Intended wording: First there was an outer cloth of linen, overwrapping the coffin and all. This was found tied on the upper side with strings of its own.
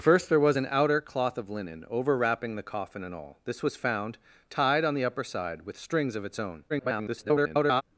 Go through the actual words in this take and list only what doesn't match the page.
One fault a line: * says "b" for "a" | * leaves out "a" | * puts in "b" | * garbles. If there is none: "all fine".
* garbles